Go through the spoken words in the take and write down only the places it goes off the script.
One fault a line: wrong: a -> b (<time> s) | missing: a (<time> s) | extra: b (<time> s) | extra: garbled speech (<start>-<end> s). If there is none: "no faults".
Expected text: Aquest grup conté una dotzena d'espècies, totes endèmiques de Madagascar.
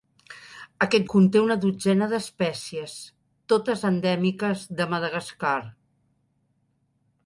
missing: grup (1.0 s)